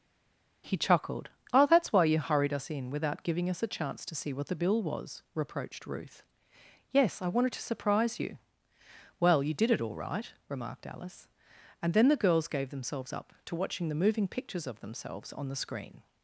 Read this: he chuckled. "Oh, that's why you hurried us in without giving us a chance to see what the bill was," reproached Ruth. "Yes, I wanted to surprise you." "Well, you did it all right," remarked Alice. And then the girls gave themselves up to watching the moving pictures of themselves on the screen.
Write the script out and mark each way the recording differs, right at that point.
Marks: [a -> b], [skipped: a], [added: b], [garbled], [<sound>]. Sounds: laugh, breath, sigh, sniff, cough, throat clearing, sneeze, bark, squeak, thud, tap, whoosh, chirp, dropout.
he chuckled. "Oh, that's why you hurried us in without giving us a chance to see what the bill was," reproached Ruth. "Yes, I wanted to surprise you." "Well, you did it all right," remarked Alice. And then the girls gave themselves up to watching the moving pictures of themselves on the screen.